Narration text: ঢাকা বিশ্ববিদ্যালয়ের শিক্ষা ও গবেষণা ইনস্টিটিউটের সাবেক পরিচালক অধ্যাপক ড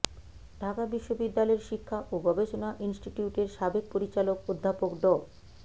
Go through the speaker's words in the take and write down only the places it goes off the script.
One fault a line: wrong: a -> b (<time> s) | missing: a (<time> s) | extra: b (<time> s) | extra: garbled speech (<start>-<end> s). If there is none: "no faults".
no faults